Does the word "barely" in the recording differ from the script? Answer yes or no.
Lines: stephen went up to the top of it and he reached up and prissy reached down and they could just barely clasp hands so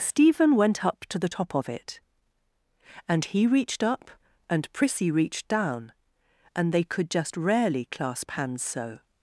yes